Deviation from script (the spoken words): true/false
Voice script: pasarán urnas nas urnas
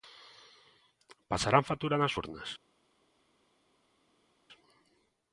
true